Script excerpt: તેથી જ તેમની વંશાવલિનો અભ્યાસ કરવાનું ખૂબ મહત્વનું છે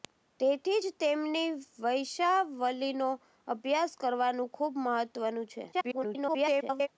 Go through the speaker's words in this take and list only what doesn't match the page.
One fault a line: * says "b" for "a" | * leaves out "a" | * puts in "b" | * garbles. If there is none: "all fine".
* garbles